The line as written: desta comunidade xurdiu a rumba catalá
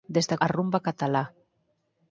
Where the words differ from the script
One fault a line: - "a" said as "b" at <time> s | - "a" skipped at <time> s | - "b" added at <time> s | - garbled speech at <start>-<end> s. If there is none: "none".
- "comunidade xurdiu" skipped at 0.4 s